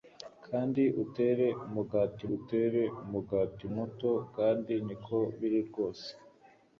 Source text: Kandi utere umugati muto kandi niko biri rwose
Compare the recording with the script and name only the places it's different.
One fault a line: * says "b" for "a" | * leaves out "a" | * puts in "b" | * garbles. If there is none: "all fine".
* puts in "utere umugati"